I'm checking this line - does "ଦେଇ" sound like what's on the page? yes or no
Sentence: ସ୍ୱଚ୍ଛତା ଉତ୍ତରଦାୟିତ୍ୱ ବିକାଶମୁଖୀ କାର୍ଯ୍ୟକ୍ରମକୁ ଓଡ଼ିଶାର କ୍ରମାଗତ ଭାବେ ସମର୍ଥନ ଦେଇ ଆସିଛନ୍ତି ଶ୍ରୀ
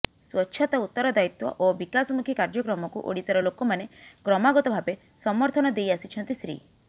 yes